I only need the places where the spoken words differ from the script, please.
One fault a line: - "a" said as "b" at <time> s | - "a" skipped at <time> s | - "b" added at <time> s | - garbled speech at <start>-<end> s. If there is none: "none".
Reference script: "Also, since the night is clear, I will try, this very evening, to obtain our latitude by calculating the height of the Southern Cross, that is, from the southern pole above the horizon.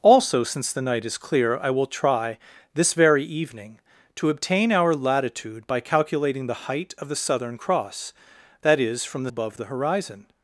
- "southern pole" skipped at 9.3 s